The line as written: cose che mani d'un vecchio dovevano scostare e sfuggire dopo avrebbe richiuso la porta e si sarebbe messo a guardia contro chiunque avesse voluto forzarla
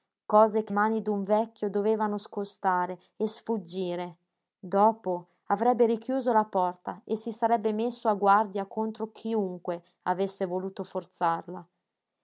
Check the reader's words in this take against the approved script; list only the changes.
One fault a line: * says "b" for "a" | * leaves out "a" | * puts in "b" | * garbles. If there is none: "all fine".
all fine